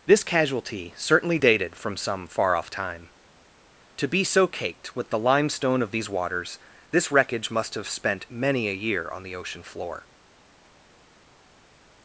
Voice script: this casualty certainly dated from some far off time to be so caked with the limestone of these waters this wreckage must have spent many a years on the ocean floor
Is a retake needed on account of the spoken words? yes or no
yes